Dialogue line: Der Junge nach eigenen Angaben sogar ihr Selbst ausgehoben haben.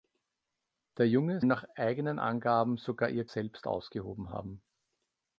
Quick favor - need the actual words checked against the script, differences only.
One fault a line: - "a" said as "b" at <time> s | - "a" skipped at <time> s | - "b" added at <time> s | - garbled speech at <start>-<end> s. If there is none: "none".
none